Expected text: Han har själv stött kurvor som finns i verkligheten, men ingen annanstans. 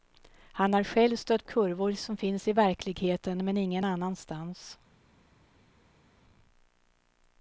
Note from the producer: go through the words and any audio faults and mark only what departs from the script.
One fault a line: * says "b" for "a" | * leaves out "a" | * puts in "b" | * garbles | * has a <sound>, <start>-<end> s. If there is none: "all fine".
all fine